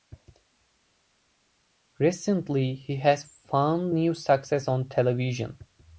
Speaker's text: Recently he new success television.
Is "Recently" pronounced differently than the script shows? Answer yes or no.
no